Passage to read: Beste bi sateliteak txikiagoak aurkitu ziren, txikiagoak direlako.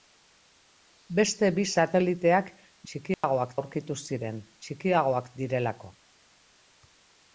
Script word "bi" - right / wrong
right